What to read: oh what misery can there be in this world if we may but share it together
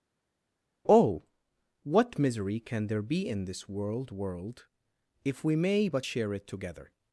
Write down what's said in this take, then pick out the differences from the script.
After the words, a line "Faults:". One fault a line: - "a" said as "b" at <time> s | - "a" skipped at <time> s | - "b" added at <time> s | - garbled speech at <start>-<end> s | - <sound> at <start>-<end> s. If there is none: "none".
oh what misery can there be in this world world if we may but share it together
Faults:
- "world" added at 4.1 s